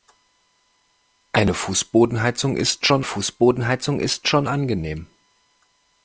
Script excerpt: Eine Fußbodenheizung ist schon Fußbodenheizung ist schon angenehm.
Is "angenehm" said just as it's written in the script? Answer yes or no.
yes